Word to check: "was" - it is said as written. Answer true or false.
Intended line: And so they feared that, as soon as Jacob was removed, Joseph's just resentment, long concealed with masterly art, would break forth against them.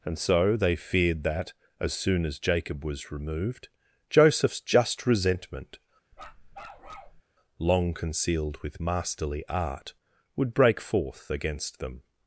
true